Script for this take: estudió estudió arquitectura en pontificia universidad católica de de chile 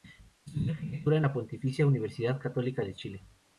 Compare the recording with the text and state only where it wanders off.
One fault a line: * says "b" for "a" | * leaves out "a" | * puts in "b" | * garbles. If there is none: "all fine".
* leaves out "estudió"
* puts in "la"
* leaves out "de"